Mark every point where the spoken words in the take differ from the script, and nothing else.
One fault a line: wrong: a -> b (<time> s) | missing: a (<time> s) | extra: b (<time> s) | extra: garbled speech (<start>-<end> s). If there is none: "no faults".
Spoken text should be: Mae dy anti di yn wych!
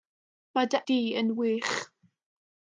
missing: anti (0.8 s)